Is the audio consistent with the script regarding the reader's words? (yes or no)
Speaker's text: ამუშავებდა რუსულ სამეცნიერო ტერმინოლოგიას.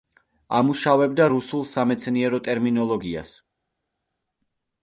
yes